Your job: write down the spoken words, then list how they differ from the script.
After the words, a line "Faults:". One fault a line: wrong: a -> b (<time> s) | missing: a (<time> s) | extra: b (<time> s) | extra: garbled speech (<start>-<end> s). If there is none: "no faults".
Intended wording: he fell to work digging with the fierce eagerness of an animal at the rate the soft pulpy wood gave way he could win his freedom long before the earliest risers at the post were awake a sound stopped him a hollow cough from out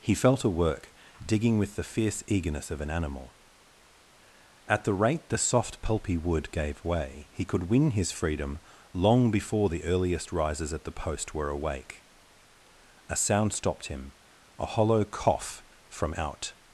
he fell to work digging with the fierce eagerness of an animal at the rate the soft pulpy wood gave way he could win his freedom long before the earliest risers at the post were awake a sound stopped him a hollow cough from out
Faults:
no faults